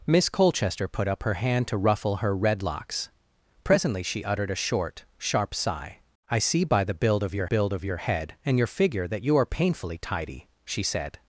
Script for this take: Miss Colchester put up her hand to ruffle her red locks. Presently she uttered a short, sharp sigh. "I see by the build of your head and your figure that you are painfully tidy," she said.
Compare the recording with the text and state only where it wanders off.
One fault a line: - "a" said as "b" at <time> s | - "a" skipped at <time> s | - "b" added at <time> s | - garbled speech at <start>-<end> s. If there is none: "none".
- "build of your" added at 7.4 s